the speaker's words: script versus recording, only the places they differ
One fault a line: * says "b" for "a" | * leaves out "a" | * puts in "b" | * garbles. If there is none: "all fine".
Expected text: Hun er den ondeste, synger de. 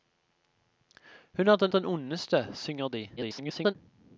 * puts in "den"
* garbles